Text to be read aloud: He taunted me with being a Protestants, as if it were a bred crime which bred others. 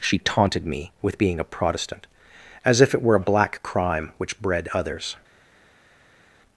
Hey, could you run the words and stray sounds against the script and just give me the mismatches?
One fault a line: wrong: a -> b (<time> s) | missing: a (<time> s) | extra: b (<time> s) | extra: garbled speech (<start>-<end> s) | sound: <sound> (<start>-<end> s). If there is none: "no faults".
wrong: He -> She (0.0 s)
wrong: Protestants -> Protestant (1.4 s)
wrong: bred -> black (3.3 s)